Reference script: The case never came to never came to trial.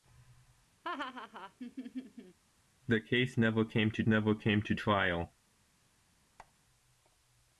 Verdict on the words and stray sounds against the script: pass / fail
fail